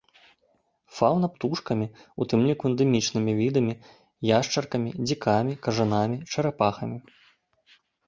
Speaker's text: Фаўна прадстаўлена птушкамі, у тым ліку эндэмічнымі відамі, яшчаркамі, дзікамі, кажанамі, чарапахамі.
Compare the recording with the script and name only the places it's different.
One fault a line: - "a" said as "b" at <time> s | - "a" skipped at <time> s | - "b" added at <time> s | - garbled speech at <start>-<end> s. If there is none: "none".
- "прадстаўлена" skipped at 1.3 s